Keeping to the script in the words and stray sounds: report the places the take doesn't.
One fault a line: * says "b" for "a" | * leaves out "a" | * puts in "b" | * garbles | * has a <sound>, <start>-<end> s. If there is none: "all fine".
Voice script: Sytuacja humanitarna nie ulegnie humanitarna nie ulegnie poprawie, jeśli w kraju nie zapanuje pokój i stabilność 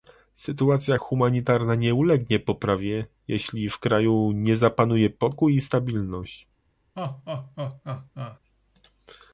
* leaves out "humanitarna nie ulegnie"
* has a laugh, 7.0-8.4 s